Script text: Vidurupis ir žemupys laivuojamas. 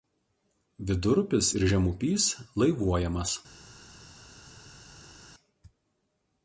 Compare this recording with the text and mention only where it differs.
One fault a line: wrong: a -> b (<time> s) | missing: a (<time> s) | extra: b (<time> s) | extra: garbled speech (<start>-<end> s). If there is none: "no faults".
no faults